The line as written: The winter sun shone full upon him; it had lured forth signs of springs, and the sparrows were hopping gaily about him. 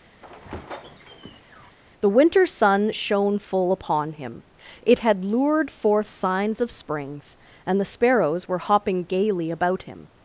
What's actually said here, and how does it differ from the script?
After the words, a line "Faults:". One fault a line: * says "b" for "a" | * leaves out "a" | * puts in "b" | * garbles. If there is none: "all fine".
The winter sun shone full upon him; it had lured forth signs of springs, and the sparrows were hopping gaily about him.
Faults:
all fine